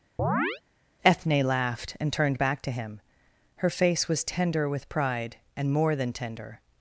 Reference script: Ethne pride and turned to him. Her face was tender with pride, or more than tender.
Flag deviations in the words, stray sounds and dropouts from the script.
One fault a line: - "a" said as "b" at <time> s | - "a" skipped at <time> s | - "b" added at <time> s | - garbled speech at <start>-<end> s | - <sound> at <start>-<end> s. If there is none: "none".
- chirp at 0.2-0.6 s
- "pride" said as "laughed" at 1.4 s
- "back" added at 2.4 s
- "or" said as "and" at 5.5 s